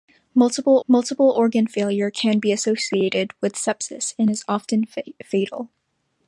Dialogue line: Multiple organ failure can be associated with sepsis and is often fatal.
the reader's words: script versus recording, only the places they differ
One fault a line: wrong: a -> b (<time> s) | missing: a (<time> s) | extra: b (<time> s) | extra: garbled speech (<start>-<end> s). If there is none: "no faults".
extra: multiple (0.9 s)